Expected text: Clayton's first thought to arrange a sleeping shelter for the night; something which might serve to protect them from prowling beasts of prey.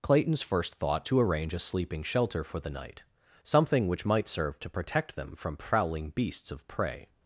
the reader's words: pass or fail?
pass